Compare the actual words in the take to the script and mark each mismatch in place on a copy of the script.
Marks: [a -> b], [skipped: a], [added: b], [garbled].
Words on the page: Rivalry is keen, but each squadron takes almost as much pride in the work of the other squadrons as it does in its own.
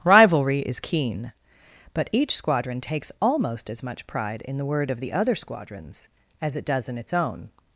Rivalry is keen, but each squadron takes almost as much pride in the [work -> word] of the other squadrons as it does in its own.